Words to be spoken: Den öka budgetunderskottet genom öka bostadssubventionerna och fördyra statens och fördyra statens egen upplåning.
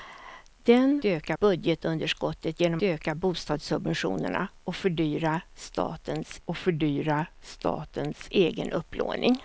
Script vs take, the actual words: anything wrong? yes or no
no